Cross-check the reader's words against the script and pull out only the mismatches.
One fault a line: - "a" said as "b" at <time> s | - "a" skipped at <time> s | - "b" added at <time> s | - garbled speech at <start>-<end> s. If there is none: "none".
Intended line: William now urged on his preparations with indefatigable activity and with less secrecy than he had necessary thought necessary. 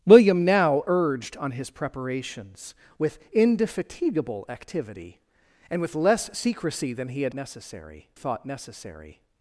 none